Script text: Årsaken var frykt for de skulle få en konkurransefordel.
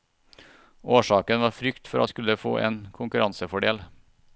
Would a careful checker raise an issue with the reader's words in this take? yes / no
no